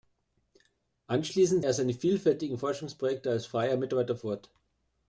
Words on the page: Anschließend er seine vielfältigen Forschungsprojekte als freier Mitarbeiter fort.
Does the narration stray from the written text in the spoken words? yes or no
no